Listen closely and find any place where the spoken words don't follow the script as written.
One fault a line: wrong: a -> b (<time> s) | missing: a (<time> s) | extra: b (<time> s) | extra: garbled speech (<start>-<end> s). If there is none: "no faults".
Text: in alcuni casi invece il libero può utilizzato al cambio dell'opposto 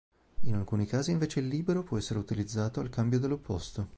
extra: essere (1.9 s)